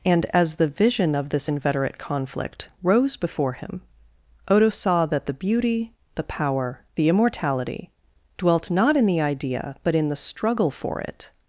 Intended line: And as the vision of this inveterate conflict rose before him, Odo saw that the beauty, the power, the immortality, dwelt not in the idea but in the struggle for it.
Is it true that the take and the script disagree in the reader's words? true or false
false